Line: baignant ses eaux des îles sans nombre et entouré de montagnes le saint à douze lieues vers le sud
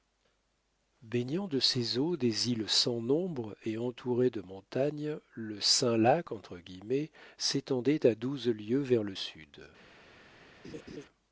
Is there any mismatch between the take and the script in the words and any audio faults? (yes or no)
yes